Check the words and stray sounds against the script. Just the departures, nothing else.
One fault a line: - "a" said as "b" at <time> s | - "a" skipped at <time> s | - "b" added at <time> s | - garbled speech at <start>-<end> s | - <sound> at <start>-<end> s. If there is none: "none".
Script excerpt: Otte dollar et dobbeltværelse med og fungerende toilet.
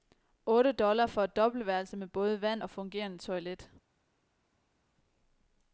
- "for" added at 1.1 s
- "både vand" added at 2.1 s